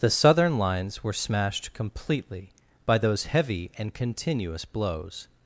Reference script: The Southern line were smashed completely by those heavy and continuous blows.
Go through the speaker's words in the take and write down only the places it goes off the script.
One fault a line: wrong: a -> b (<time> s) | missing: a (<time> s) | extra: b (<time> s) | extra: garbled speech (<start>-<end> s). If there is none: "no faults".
wrong: line -> lines (0.6 s)